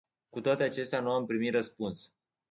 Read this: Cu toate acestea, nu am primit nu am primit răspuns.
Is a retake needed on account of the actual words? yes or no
yes